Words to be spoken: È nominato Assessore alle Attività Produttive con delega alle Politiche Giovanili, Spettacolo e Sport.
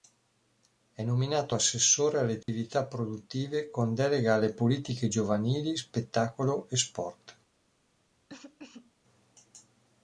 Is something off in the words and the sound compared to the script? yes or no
yes